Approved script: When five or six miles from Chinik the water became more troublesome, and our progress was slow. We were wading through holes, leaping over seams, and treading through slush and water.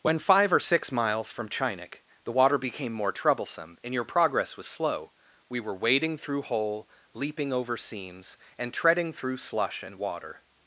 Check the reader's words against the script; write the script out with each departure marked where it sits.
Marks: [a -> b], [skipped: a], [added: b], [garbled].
When five or six miles from Chinik the water became more troublesome, and [our -> your] progress was slow. We were wading through [holes, -> hole] leaping over seams, and treading through slush and water.